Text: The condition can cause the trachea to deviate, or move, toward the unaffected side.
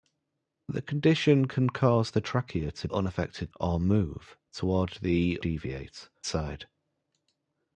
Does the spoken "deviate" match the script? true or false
false